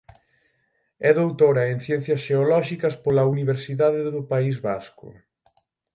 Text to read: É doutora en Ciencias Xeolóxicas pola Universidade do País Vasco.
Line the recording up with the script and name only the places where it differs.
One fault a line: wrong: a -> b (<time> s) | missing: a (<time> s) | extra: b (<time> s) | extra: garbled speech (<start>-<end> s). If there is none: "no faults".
no faults